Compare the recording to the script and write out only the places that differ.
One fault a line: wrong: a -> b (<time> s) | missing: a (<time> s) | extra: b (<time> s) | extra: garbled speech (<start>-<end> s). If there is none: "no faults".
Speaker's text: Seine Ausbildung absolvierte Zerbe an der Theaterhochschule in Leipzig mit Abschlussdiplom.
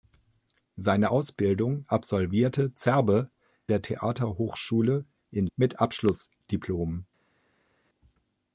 missing: an (3.3 s)
missing: Leipzig (5.5 s)